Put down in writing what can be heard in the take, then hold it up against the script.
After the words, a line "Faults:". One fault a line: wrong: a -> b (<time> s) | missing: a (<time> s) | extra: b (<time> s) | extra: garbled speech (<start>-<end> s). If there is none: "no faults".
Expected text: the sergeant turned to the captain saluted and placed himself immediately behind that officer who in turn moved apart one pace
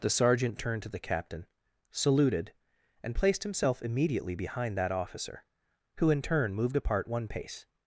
the sergeant turned to the captain saluted and placed himself immediately behind that officer who in turn moved apart one pace
Faults:
no faults